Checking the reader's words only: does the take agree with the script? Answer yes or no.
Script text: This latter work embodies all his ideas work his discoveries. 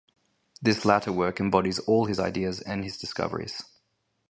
no